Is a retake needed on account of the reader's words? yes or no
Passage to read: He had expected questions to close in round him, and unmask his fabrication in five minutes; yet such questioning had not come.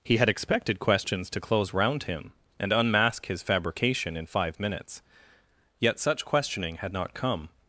yes